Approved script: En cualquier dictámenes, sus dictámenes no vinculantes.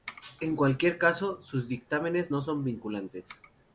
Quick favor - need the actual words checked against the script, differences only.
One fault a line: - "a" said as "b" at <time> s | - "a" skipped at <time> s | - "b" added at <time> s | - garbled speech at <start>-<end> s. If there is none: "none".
- "dictámenes" said as "caso" at 1.0 s
- "son" added at 2.4 s